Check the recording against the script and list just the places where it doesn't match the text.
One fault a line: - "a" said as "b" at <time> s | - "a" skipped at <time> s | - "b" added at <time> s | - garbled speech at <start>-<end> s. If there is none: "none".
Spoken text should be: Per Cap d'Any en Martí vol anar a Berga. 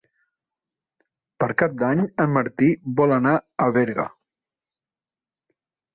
none